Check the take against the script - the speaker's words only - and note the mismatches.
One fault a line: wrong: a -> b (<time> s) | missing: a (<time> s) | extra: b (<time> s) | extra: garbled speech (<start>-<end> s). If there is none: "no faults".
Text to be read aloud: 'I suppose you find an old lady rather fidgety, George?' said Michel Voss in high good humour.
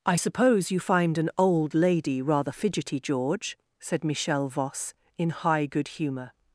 no faults